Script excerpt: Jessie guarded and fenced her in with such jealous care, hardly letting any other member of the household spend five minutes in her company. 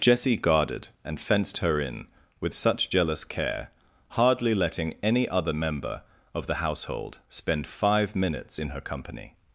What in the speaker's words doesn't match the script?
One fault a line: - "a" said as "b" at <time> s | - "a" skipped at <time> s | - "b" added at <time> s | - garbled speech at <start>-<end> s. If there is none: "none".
none